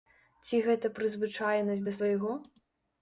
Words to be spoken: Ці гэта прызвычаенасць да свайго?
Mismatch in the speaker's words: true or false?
false